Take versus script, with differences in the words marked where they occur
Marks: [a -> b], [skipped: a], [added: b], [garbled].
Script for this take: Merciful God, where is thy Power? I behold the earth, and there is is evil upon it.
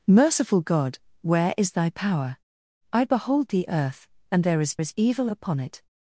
Merciful God, where is thy Power? I behold the earth, and there is is evil upon it.